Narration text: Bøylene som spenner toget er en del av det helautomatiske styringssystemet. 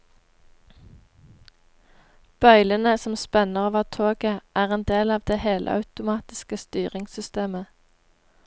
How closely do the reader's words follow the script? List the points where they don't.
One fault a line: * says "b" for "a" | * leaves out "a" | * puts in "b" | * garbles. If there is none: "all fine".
* puts in "over"